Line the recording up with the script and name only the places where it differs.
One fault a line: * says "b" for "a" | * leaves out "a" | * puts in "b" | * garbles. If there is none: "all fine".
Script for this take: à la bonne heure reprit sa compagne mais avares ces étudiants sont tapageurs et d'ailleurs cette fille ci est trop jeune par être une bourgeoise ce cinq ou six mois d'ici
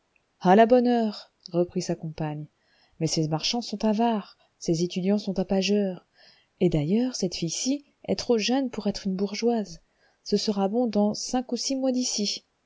* puts in "ces marchands sont"
* says "pour" for "par"
* puts in "sera bon dans"